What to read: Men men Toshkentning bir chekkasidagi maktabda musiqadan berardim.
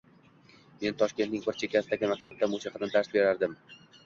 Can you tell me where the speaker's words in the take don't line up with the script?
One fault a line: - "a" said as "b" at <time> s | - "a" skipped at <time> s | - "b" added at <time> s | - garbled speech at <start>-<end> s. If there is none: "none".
- "men" skipped at 1.0 s
- "dars" added at 3.0 s